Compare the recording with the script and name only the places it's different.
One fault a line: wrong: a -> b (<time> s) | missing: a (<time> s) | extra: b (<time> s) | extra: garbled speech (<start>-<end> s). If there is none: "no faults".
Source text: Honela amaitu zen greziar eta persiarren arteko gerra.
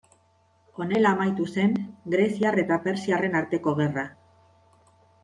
no faults